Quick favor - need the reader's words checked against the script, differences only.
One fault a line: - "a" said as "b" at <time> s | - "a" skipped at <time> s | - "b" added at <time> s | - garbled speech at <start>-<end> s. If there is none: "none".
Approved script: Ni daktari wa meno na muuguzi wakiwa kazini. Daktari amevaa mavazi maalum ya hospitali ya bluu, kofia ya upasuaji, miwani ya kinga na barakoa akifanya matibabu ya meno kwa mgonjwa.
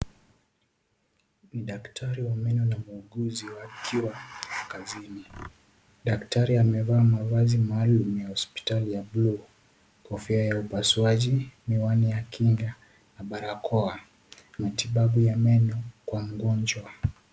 - "akifanya" skipped at 14.0 s